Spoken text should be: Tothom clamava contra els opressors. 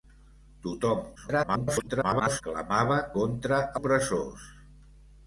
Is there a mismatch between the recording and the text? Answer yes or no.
yes